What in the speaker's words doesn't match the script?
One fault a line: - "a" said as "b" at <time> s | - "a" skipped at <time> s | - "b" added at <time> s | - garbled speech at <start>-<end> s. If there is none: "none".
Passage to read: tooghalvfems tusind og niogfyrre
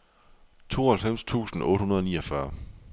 - "otte hundrede" added at 1.6 s